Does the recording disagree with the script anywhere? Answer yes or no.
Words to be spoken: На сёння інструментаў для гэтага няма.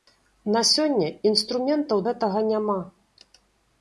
yes